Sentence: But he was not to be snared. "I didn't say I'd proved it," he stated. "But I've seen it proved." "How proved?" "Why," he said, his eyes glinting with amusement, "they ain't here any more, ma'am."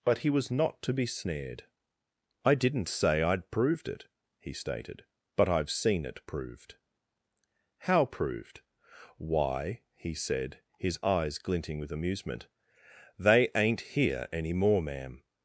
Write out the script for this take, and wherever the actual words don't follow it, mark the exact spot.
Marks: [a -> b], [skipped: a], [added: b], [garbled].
But he was not to be snared. "I didn't say I'd proved it," he stated. "But I've seen it proved." "How proved?" "Why," he said, his eyes glinting with amusement, "they ain't here any more, ma'am."